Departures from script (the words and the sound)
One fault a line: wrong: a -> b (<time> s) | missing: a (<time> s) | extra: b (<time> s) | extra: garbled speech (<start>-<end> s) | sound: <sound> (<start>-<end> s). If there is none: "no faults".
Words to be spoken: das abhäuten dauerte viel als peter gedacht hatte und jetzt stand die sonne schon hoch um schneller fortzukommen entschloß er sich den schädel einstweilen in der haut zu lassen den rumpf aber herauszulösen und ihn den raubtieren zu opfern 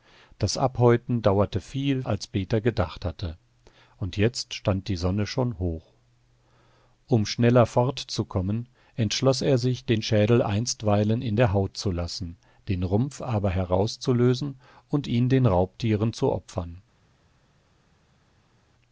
no faults